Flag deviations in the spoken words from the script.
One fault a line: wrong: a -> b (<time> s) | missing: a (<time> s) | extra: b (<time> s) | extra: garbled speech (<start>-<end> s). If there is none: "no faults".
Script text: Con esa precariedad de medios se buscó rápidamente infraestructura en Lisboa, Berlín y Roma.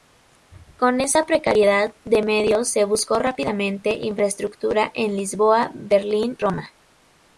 missing: y (6.4 s)